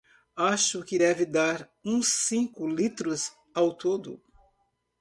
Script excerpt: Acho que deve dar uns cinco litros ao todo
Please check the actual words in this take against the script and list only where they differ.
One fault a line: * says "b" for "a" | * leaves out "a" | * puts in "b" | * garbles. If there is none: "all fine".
all fine